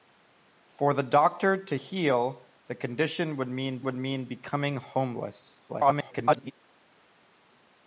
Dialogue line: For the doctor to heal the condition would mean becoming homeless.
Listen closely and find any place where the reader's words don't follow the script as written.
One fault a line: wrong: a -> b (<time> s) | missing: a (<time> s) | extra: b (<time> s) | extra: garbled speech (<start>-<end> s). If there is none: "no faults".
extra: would mean (3.8 s)
extra: garbled speech (5.7-6.5 s)